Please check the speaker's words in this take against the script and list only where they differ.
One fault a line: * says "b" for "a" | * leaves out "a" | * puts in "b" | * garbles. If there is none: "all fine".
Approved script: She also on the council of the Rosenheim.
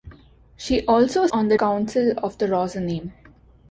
all fine